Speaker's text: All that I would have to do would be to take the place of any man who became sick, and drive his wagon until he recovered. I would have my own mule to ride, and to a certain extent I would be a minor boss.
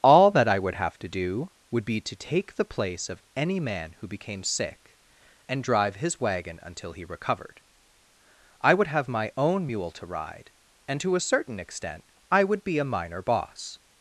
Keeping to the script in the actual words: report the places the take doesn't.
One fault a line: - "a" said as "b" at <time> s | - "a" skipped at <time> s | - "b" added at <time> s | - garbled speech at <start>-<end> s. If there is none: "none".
none